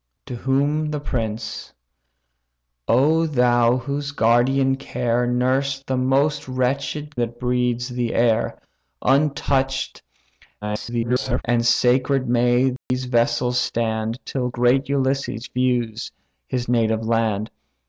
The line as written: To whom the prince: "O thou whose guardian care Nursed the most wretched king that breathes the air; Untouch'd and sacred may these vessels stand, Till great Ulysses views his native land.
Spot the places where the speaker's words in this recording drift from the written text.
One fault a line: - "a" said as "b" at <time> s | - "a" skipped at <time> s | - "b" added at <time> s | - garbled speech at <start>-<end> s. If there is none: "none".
- "king" skipped at 7.2 s
- garbled speech at 10.6-11.4 s